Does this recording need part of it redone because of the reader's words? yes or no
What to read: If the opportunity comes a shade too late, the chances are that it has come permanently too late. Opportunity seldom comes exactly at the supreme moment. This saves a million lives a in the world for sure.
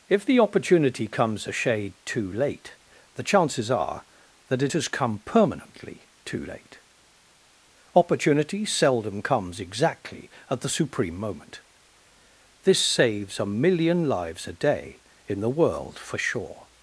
yes